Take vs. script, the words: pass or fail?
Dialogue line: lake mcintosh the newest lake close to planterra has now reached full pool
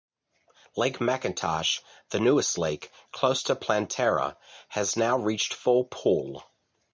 pass